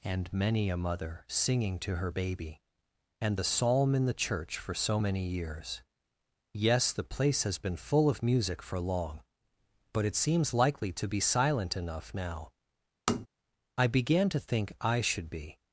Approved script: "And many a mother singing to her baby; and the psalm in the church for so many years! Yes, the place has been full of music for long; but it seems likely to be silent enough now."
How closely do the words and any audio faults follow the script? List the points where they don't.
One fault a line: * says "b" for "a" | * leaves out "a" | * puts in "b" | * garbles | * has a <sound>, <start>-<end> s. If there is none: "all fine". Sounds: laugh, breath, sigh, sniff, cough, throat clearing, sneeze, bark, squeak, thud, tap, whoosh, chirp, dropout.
* has a tap, 13.1-13.3 s
* puts in "I began to think I should be"